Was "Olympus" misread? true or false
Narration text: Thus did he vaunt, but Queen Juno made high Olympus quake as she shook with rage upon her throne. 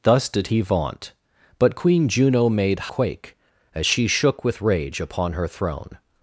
true